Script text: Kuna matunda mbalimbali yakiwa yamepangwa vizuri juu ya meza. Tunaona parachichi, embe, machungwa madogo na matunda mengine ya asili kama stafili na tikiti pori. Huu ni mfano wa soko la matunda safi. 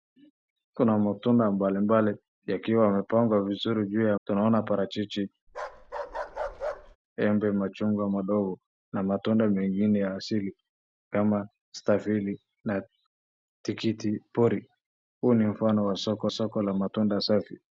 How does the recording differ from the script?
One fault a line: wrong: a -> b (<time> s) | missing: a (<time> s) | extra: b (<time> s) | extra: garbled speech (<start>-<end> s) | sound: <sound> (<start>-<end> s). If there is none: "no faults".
missing: meza (4.2 s)
sound: bark (5.5-7.0 s)
extra: soko (16.3 s)